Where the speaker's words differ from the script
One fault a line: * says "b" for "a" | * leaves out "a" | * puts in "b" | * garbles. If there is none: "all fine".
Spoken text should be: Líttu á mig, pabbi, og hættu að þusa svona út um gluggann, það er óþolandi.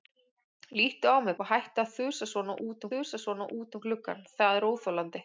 * leaves out "pabbi"
* puts in "þusa svona út"